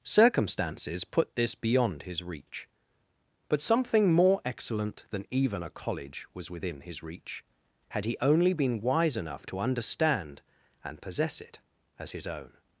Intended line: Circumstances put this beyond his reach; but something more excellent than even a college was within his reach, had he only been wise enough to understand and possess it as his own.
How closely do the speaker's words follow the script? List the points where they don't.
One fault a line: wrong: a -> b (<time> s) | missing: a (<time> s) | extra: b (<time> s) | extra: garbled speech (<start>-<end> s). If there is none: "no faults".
no faults